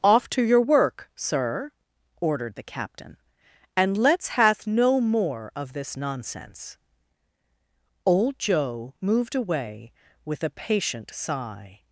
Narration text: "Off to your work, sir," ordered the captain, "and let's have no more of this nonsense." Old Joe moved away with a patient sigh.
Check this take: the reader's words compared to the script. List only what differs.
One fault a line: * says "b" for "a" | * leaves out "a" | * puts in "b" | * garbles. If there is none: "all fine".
* says "hath" for "have"